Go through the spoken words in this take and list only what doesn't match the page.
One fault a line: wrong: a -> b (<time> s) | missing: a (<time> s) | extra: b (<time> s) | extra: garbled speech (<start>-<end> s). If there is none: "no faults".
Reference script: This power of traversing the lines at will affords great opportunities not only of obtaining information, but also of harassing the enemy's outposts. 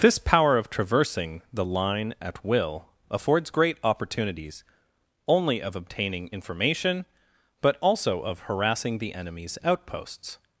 wrong: lines -> line (1.6 s)
missing: not (4.6 s)